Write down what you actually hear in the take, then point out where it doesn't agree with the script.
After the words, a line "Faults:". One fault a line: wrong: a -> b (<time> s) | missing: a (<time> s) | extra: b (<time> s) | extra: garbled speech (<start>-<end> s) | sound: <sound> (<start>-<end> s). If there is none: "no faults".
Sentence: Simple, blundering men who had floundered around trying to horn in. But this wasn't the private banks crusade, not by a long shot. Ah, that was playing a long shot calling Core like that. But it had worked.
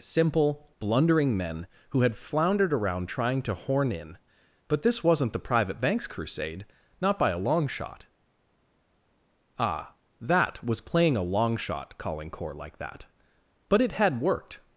Simple, blundering men who had floundered around trying to horn in. But this wasn't the private banks crusade, not by a long shot. Ah, that was playing a long shot calling Core like that. But it had worked.
Faults:
no faults